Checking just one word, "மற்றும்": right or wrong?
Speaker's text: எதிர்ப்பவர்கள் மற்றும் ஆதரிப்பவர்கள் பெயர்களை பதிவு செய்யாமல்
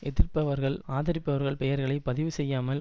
wrong